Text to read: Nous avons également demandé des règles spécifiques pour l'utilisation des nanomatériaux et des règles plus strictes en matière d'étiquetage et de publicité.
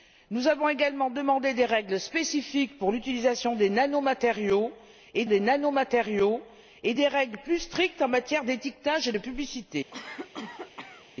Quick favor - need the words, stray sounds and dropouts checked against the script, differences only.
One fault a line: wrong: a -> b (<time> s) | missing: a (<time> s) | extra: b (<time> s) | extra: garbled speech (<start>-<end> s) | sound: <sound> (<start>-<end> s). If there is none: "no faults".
extra: nanomatériaux et des (5.4 s)
sound: cough (9.9-11.1 s)